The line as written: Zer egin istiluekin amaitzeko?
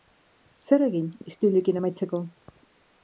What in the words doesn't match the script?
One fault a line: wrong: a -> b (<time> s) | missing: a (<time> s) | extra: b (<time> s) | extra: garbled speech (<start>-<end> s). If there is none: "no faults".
no faults